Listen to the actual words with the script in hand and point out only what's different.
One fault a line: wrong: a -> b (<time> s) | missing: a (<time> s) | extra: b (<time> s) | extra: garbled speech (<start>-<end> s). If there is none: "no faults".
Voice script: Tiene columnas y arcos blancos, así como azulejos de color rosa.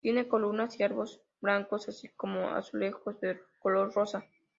no faults